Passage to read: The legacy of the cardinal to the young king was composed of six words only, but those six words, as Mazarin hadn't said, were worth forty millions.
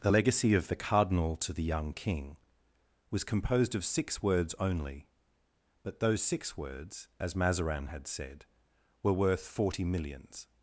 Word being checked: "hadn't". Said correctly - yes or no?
no